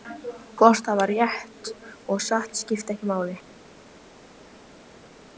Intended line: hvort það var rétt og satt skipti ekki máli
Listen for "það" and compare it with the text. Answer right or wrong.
right